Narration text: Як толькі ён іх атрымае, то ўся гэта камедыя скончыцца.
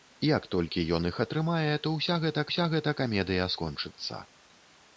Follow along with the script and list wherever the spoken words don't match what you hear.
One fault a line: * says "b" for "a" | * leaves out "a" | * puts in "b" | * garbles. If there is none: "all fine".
* puts in "ўся гэта"